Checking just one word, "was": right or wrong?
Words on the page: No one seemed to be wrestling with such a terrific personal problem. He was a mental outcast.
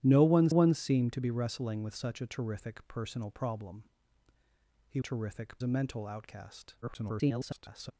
wrong